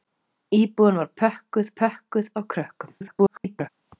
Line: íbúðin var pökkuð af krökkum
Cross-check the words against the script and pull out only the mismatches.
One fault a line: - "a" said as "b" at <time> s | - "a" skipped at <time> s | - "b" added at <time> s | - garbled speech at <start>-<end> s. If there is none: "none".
- "pökkuð" added at 1.8 s
- garbled speech at 3.0-3.7 s